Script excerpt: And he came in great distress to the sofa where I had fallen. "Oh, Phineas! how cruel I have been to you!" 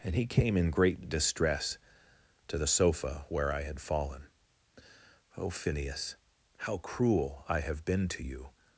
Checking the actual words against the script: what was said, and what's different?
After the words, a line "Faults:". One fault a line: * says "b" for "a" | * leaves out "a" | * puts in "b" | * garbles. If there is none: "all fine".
And he came in great distress to the sofa where I had fallen. "Oh, Phineas! how cruel I have been to you!"
Faults:
all fine